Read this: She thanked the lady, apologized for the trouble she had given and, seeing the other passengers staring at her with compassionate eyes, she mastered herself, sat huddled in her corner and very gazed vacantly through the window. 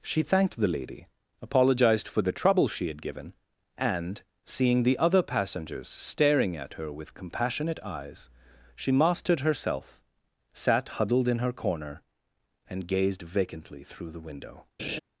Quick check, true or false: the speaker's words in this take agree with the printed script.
false